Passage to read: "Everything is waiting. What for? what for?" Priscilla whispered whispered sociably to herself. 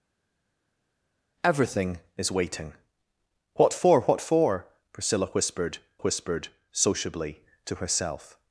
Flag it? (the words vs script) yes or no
no